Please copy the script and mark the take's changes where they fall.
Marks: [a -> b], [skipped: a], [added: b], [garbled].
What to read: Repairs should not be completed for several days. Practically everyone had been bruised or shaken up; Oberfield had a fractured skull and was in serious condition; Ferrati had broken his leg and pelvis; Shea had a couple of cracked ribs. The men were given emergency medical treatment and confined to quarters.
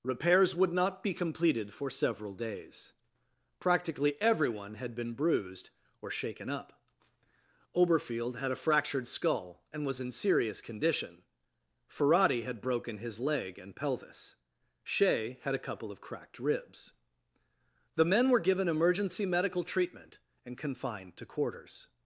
Repairs [should -> would] not be completed for several days. Practically everyone had been bruised or shaken up; Oberfield had a fractured skull and was in serious condition; Ferrati had broken his leg and pelvis; Shea had a couple of cracked ribs. The men were given emergency medical treatment and confined to quarters.